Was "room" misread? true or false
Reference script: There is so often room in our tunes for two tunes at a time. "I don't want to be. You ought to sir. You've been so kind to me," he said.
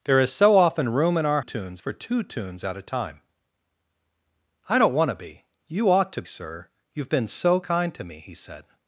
false